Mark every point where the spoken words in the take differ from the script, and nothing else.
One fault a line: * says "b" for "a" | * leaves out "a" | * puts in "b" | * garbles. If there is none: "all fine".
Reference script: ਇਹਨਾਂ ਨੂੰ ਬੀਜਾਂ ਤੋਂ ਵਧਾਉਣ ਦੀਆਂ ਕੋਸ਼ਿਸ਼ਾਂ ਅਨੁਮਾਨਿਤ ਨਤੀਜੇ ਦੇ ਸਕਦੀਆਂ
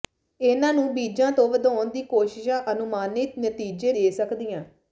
all fine